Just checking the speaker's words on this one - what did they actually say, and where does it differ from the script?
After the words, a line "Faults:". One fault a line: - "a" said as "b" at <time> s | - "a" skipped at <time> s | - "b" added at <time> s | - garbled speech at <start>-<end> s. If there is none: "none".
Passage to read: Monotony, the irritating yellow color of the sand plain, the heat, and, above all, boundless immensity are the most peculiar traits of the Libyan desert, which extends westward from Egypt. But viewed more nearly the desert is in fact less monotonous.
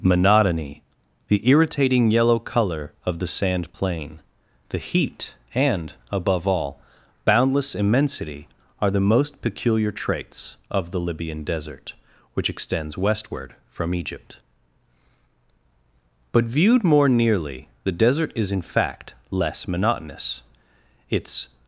Monotony, the irritating yellow color of the sand plain, the heat, and, above all, boundless immensity are the most peculiar traits of the Libyan desert, which extends westward from Egypt. But viewed more nearly the desert is in fact less monotonous. Its
Faults:
- "Its" added at 21.1 s